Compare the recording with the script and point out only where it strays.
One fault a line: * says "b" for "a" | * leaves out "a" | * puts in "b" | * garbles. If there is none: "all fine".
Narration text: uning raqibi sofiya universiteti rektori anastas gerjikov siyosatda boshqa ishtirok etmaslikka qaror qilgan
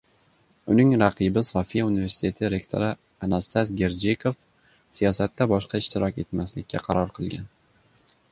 all fine